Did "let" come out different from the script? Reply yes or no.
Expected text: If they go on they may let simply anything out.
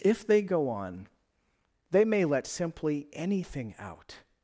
no